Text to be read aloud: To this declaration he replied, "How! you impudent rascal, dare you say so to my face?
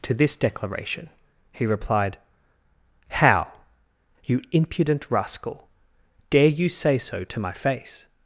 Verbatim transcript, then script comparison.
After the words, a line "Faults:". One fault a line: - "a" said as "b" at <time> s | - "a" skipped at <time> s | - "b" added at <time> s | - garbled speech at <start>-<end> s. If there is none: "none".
To this declaration he replied, "How! you impudent rascal, dare you say so to my face?
Faults:
none